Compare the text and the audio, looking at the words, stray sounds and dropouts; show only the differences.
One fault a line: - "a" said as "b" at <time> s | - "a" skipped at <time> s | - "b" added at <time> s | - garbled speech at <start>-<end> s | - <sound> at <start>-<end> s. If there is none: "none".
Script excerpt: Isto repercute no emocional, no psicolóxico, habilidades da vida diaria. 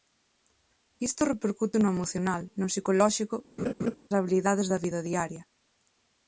- laugh at 3.6-4.0 s